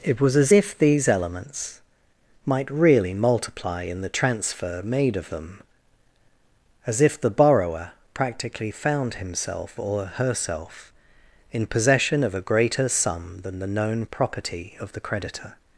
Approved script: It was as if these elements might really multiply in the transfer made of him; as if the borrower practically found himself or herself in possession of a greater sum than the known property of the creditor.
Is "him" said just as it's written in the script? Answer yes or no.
no